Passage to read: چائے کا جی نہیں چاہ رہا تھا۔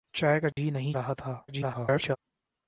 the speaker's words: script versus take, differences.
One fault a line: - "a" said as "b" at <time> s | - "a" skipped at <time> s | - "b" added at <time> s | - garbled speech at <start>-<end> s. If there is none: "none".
- "چاہ" skipped at 0.9 s
- garbled speech at 1.5-2.2 s